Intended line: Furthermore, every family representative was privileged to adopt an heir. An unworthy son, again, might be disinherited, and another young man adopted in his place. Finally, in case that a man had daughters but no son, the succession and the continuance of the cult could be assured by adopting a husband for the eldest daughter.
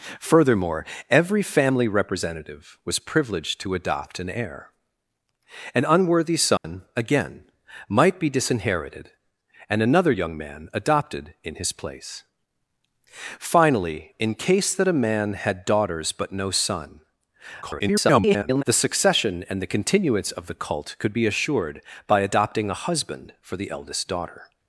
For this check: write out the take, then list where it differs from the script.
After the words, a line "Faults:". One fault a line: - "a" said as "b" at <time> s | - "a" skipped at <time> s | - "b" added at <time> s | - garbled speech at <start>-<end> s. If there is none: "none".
Furthermore, every family representative was privileged to adopt an heir. An unworthy son, again, might be disinherited, and another young man adopted in his place. Finally, in case that a man had daughters but no son, [garbled] the succession and the continuance of the cult could be assured by adopting a husband for the eldest daughter.
Faults:
- garbled speech at 17.6-18.6 s